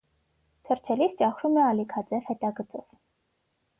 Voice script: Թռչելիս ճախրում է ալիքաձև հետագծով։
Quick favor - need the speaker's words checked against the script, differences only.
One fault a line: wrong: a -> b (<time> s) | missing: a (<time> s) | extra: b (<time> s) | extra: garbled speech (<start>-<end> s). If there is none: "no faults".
no faults